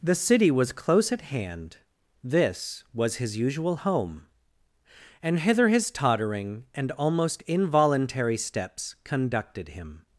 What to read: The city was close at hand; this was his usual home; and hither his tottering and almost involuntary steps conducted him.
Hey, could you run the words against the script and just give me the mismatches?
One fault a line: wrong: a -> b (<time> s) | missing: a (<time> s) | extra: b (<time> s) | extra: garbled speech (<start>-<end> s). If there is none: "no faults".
no faults